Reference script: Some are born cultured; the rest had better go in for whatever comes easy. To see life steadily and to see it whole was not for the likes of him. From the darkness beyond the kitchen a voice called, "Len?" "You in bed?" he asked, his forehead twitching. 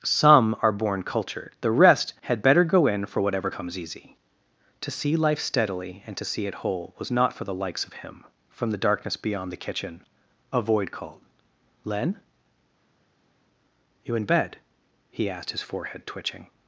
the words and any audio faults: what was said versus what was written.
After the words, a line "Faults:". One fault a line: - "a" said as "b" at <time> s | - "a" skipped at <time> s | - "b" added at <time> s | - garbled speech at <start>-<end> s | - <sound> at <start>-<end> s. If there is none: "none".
Some are born cultured; the rest had better go in for whatever comes easy. To see life steadily and to see it whole was not for the likes of him. From the darkness beyond the kitchen a void called, "Len?" "You in bed?" he asked, his forehead twitching.
Faults:
- "voice" said as "void" at 10.6 s